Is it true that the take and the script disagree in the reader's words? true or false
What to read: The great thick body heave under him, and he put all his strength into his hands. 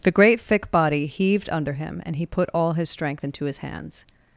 true